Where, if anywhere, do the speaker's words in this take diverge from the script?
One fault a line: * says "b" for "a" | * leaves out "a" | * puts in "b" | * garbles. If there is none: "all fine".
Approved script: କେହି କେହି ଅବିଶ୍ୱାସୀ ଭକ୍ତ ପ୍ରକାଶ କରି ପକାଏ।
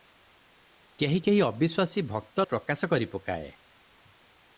all fine